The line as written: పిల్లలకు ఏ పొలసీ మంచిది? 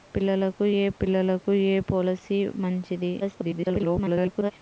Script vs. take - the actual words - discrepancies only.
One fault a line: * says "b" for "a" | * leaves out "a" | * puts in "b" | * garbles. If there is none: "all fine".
* puts in "పిల్లలకు ఏ"
* garbles